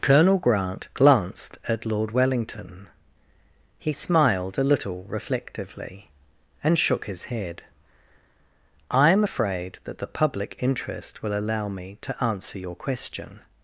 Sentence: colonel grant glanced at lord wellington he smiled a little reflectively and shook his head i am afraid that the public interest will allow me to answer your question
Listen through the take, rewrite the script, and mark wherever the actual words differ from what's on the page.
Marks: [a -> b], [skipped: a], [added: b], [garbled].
colonel grant glanced at lord wellington he smiled a little reflectively and shook his head i am afraid that the public interest will allow me to answer your question